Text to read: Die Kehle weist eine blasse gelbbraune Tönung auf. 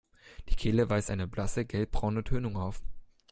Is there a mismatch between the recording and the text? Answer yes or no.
no